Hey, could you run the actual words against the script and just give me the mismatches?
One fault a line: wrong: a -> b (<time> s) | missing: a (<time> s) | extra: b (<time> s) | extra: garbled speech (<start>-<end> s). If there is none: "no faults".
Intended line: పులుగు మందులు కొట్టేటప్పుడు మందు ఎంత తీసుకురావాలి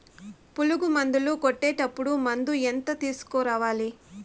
no faults